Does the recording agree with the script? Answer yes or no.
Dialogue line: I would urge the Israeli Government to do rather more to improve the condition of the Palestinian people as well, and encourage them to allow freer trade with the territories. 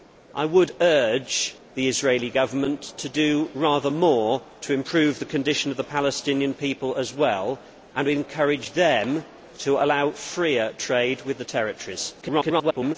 no